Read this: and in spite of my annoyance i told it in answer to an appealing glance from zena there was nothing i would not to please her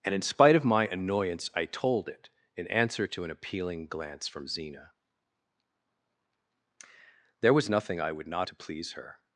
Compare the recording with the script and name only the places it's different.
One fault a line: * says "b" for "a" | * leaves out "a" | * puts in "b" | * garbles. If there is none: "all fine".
all fine